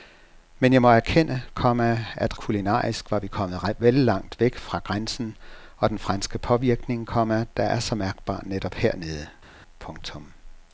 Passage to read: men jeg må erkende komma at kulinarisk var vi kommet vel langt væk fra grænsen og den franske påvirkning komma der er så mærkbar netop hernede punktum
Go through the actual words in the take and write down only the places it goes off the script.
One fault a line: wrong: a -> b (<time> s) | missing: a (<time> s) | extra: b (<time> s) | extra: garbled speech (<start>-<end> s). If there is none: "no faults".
no faults